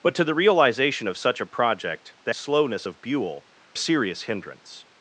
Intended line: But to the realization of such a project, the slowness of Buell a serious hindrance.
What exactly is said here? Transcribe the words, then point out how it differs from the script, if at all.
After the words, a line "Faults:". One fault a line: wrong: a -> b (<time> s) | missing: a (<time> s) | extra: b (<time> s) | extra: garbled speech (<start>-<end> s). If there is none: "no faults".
But to the realization of such a project, the slowness of Buell a serious hindrance.
Faults:
no faults